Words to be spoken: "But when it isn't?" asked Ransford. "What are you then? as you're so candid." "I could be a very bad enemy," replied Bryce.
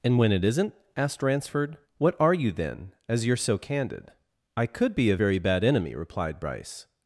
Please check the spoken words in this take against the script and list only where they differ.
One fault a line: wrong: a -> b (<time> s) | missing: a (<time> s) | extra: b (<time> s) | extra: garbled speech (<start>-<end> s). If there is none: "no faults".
wrong: But -> And (0.0 s)